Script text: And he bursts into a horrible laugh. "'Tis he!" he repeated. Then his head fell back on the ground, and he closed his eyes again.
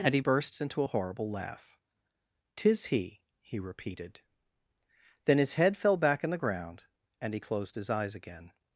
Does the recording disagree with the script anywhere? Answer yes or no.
no